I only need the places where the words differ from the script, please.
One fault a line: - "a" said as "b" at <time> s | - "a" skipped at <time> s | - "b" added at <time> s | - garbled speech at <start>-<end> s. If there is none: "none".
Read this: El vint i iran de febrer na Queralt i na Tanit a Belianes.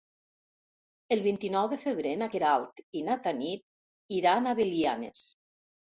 - "iran" said as "nou" at 1.6 s
- "iran" added at 4.2 s